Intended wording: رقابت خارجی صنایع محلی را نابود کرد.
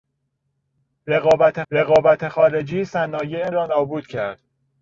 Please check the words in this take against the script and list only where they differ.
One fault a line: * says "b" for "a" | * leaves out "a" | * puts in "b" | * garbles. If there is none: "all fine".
* puts in "رقابت"
* leaves out "محلی"